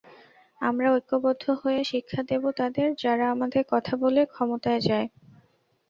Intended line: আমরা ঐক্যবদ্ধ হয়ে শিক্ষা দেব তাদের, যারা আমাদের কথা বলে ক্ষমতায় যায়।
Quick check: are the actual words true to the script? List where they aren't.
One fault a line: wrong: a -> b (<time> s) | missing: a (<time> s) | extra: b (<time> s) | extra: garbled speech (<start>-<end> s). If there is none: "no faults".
no faults